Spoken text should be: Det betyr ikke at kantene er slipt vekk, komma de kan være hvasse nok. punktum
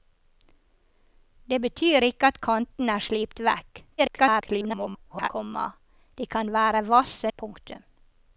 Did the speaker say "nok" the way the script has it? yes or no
no